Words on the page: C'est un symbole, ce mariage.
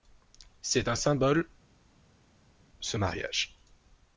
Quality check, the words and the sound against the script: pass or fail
pass